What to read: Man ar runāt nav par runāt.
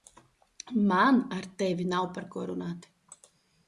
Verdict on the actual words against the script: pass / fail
fail